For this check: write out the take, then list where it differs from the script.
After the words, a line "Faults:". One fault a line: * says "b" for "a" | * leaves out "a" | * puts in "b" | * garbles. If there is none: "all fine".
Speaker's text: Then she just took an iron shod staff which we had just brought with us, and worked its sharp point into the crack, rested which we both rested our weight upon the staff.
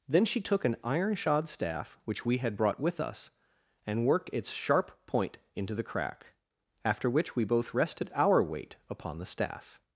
Then she took an iron shod staff which we had brought with us, and worked its sharp point into the crack, after which we both rested our weight upon the staff.
Faults:
* leaves out "just"
* leaves out "just"
* says "after" for "rested"